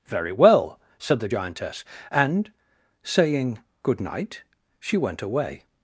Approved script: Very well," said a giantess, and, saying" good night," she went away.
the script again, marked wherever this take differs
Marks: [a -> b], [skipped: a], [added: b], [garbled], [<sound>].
Very well," said [a -> the] giantess, and, saying" good night," she went away.